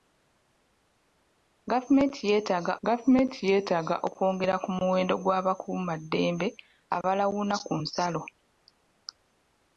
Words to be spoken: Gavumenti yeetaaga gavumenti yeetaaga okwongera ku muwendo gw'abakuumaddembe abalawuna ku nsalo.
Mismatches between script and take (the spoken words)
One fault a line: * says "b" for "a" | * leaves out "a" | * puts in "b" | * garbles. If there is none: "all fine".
all fine